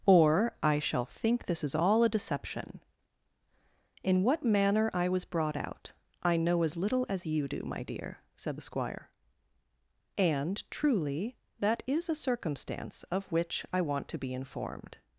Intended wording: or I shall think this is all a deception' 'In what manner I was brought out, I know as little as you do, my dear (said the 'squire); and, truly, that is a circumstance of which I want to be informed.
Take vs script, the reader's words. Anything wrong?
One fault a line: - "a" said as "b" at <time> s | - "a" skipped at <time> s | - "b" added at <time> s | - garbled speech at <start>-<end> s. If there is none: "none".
none